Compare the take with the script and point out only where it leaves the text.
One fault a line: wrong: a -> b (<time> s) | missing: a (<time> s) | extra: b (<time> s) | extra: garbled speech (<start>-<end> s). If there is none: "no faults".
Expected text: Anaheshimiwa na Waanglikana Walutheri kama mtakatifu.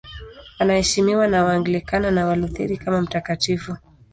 extra: na (2.1 s)